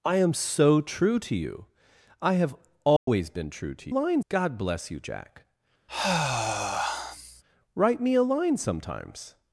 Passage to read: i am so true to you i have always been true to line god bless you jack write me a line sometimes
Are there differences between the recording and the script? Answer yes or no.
no